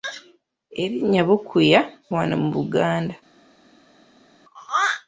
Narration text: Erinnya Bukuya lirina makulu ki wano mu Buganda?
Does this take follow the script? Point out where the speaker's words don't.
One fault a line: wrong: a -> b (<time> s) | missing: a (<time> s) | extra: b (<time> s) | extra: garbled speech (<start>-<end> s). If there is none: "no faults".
missing: lirina makulu ki (1.8 s)